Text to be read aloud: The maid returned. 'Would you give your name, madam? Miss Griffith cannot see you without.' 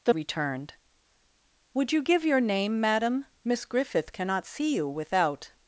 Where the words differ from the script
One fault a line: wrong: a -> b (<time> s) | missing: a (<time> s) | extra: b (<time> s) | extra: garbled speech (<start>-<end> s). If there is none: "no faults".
missing: maid (0.1 s)